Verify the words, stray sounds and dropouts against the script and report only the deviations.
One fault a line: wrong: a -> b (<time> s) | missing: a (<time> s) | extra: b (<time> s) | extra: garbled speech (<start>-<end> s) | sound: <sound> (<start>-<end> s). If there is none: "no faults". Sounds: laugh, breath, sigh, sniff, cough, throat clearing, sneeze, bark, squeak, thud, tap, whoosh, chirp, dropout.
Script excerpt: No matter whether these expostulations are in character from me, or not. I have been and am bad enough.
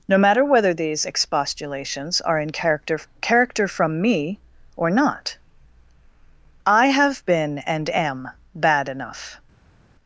extra: character (3.2 s)